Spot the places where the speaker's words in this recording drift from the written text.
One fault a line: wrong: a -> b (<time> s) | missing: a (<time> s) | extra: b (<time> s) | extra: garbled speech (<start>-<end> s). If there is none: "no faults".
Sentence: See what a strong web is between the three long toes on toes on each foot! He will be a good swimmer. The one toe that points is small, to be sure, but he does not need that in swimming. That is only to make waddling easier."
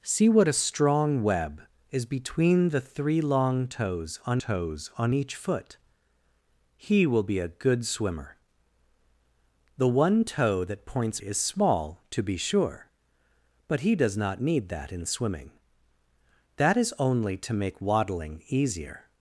no faults